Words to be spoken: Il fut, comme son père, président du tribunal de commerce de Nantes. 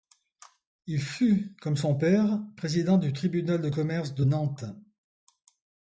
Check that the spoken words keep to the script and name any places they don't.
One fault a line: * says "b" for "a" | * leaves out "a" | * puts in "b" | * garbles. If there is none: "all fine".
all fine